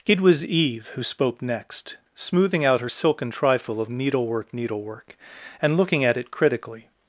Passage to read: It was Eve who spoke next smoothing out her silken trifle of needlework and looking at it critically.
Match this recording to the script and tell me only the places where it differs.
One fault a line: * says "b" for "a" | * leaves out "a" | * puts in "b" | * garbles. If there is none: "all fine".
* puts in "needlework"